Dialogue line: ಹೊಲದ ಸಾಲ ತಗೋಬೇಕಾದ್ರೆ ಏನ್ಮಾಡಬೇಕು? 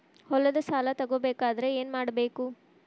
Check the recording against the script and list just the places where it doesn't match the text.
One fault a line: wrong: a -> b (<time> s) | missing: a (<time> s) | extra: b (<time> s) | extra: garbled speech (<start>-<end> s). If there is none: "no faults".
no faults